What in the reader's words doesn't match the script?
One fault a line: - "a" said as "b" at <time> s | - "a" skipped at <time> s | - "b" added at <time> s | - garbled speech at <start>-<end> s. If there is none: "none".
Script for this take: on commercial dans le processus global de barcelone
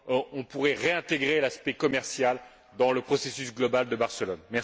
- "pourrait réintégrer l'aspect" added at 0.4 s